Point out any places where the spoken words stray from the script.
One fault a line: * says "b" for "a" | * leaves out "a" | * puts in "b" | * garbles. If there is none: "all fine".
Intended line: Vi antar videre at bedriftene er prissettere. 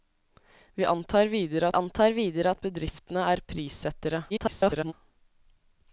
* puts in "antar videre"
* garbles